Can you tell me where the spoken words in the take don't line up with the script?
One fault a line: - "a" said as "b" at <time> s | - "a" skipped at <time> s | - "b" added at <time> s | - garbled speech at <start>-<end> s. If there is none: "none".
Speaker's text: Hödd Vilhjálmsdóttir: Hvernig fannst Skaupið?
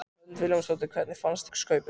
none